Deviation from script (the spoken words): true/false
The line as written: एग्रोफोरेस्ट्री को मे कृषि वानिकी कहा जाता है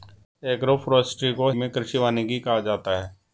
false